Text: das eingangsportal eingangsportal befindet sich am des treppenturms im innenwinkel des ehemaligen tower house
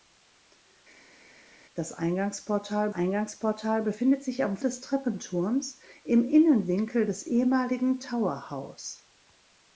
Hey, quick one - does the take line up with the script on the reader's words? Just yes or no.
yes